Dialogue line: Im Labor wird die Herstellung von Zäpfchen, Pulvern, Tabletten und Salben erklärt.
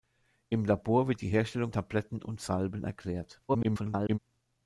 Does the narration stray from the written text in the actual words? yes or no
yes